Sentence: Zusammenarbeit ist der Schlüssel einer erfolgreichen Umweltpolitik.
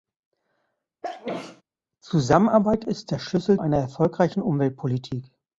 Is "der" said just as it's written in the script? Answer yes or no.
yes